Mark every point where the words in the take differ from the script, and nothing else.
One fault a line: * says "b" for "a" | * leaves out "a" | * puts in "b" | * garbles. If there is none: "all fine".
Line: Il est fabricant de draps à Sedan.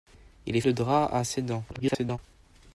* leaves out "fabricant"
* garbles